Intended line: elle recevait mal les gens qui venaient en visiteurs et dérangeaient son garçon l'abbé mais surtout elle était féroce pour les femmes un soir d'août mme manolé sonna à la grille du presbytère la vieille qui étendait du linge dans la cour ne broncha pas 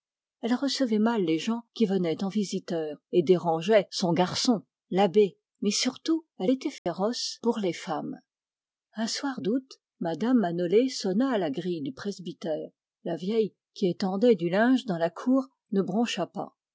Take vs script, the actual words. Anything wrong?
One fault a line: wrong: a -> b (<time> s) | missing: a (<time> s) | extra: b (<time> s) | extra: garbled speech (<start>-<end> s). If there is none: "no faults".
no faults